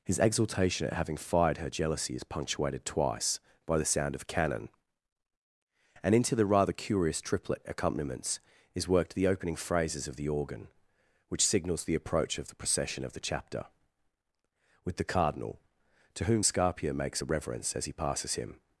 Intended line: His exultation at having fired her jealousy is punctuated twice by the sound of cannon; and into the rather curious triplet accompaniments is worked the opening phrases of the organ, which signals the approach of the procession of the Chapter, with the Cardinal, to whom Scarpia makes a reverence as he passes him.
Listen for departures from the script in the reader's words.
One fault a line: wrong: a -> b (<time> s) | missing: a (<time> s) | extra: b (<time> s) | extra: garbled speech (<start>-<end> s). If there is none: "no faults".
no faults